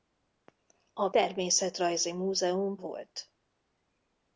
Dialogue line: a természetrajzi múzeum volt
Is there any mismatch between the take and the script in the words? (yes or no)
no